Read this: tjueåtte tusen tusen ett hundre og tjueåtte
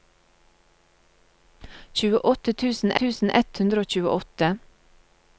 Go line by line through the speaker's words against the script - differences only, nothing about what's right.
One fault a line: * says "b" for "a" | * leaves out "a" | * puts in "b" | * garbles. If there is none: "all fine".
all fine